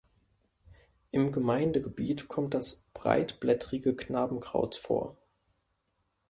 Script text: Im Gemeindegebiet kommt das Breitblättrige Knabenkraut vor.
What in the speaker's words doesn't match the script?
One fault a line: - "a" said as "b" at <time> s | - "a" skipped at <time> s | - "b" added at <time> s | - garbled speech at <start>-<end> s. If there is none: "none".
none